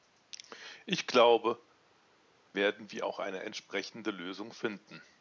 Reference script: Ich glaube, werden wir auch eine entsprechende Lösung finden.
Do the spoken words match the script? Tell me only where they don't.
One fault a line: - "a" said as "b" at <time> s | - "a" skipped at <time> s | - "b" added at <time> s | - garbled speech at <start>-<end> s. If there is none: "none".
none